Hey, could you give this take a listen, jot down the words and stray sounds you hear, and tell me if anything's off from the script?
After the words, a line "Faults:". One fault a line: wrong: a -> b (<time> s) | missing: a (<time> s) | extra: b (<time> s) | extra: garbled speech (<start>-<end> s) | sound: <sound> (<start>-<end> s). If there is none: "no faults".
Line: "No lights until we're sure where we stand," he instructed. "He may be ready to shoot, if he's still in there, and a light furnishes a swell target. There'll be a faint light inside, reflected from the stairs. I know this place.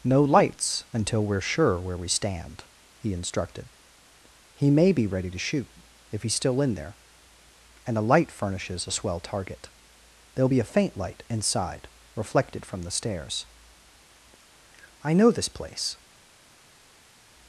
"No lights until we're sure where we stand," he instructed. "He may be ready to shoot, if he's still in there, and a light furnishes a swell target. There'll be a faint light inside, reflected from the stairs. I know this place.
Faults:
no faults